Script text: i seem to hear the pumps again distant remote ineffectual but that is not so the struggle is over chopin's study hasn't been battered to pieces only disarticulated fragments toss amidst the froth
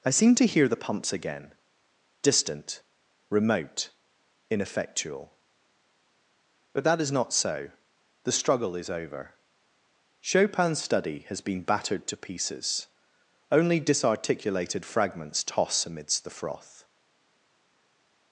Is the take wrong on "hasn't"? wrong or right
wrong